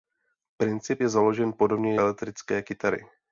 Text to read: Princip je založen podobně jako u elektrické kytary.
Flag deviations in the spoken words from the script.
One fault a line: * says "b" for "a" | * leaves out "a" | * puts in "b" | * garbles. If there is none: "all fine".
* leaves out "jako u"